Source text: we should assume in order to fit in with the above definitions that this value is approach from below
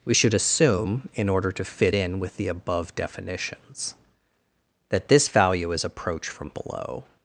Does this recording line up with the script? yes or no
yes